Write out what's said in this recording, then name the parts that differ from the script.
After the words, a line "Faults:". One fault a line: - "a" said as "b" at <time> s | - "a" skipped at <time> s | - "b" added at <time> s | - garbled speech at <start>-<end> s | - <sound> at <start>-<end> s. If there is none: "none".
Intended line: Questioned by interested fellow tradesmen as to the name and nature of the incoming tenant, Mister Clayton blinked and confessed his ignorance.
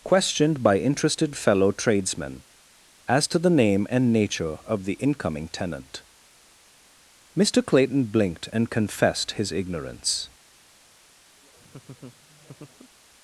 Questioned by interested fellow tradesmen as to the name and nature of the incoming tenant, Mister Clayton blinked and confessed his ignorance.
Faults:
- laugh at 11.4-12.9 s